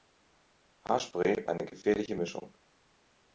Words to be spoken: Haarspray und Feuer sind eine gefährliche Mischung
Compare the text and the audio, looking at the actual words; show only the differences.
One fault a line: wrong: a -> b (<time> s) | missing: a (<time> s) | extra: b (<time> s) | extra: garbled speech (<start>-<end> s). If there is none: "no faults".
missing: und Feuer sind (1.4 s)